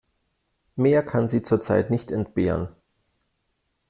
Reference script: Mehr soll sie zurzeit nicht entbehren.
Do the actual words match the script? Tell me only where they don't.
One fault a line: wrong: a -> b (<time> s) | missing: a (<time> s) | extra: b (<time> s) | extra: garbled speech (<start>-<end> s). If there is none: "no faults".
wrong: soll -> kann (1.1 s)